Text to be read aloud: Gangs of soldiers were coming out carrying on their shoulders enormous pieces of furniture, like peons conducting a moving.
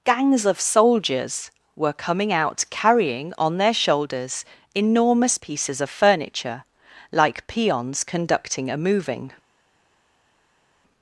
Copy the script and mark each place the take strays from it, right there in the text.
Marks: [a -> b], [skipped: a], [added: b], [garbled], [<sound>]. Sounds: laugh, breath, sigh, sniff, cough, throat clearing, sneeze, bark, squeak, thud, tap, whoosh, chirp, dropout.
Gangs of soldiers were coming out carrying on their shoulders enormous pieces of furniture, like peons conducting a moving.